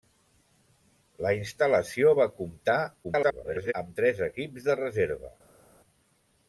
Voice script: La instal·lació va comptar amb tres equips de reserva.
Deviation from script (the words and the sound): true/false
true